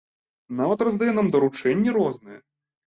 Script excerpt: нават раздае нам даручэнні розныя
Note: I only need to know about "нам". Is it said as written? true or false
true